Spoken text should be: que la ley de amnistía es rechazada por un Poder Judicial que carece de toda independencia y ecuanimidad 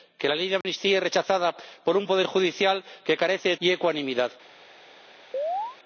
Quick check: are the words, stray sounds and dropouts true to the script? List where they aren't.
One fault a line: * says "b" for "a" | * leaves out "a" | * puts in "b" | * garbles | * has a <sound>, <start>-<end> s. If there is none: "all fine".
* has a dropout, 0.6-0.6 s
* leaves out "toda independencia"
* has a chirp, 5.3-5.8 s